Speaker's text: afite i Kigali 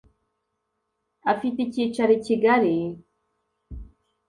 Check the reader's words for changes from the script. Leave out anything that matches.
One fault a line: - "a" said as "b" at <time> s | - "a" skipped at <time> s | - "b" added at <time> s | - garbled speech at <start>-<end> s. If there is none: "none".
- "icyicaro" added at 1.6 s